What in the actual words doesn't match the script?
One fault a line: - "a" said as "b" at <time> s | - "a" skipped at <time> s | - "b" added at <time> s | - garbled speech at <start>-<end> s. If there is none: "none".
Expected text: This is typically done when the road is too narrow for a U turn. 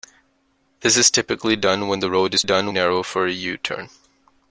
- "too" said as "done" at 2.4 s